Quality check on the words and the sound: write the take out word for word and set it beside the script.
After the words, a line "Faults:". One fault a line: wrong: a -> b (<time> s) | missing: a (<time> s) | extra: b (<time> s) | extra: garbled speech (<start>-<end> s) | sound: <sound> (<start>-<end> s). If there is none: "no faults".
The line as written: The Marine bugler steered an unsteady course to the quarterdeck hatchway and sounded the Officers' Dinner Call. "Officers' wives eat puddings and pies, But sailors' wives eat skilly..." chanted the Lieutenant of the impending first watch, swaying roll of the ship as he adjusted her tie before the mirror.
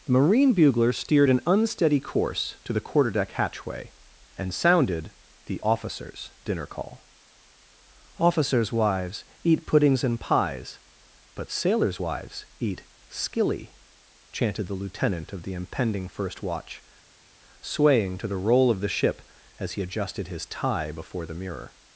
The Marine bugler steered an unsteady course to the quarterdeck hatchway and sounded the Officers' Dinner Call. "Officers' wives eat puddings and pies, But sailors' wives eat skilly..." chanted the Lieutenant of the impending first watch, swaying to the roll of the ship as he adjusted his tie before the mirror.
Faults:
extra: to the (18.2 s)
wrong: her -> his (20.3 s)